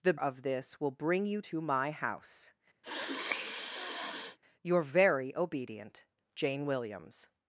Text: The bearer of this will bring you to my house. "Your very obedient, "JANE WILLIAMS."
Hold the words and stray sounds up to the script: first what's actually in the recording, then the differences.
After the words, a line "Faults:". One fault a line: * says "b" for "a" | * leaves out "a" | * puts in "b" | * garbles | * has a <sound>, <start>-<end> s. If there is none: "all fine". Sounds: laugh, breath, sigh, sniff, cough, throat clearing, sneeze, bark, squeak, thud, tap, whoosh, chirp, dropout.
The of this will bring you to my house. "Your very obedient, "JANE WILLIAMS."
Faults:
* leaves out "bearer"
* has a sniff, 2.8-4.4 s